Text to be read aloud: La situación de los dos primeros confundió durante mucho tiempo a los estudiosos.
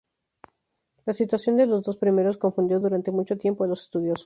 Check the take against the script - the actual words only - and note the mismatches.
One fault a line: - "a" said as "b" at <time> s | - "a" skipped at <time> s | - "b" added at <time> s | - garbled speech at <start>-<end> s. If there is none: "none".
none